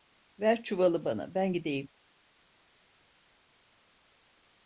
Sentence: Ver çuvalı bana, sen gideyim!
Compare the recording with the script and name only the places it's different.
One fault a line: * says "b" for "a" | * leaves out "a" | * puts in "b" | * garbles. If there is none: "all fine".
* says "ben" for "sen"